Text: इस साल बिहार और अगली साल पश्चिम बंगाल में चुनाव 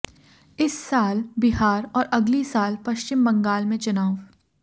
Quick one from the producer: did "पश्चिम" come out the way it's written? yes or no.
yes